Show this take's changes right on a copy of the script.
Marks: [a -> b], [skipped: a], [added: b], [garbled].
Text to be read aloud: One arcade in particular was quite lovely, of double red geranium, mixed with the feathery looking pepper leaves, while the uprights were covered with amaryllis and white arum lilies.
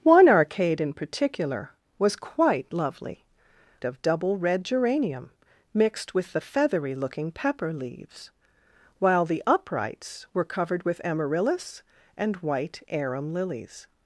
One arcade in particular was quite lovely, of double red geranium, mixed with the feathery looking pepper leaves, while the uprights were covered with amaryllis and white arum lilies.